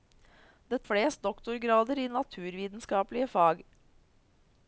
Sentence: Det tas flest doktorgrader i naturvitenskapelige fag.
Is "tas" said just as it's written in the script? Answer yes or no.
no